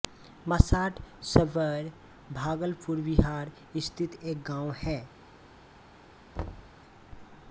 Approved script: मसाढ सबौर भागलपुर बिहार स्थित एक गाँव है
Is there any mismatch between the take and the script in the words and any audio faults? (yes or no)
yes